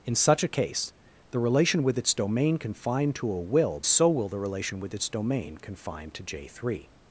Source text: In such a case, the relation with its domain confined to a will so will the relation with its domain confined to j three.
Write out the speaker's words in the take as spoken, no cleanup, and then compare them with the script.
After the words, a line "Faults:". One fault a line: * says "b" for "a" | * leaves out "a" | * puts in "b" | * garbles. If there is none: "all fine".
In such a case, the relation with its domain confined to a will so will the relation with its domain confined to j three.
Faults:
all fine